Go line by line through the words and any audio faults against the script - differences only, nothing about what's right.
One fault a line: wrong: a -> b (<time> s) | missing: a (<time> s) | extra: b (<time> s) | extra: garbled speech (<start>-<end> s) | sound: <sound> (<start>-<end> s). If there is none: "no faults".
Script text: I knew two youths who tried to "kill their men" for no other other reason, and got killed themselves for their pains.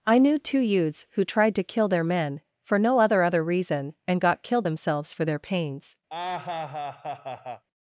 sound: laugh (6.1-7.6 s)